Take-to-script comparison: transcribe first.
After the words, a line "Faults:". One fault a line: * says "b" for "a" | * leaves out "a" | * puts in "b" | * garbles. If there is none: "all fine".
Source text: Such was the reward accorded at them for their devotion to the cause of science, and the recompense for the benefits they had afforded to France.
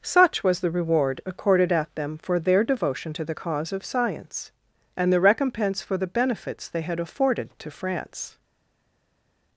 Such was the reward accorded at them for their devotion to the cause of science, and the recompense for the benefits they had afforded to France.
Faults:
all fine